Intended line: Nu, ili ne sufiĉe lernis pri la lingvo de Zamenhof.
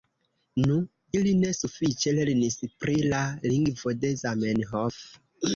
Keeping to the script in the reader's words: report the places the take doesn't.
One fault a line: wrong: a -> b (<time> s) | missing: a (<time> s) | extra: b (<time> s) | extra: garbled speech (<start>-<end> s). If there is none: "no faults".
no faults